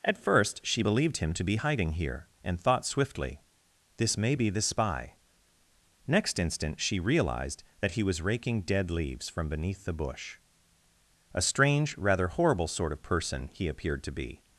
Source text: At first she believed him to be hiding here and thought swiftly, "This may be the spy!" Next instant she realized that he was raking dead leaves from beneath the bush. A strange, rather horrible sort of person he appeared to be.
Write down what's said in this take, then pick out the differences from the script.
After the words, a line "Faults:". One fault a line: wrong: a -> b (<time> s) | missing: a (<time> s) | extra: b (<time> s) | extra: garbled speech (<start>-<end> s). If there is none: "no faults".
At first she believed him to be hiding here and thought swiftly, "This may be the spy!" Next instant she realized that he was raking dead leaves from beneath the bush. A strange, rather horrible sort of person he appeared to be.
Faults:
no faults